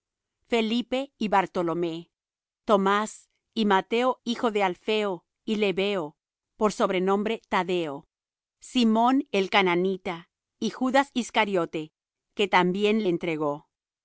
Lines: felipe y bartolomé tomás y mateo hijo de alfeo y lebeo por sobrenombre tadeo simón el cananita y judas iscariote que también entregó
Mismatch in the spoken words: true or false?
false